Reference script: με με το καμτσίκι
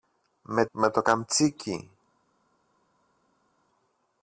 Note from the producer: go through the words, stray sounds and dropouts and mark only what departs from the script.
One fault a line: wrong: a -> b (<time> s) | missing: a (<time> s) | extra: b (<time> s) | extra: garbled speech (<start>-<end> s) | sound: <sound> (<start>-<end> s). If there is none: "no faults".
no faults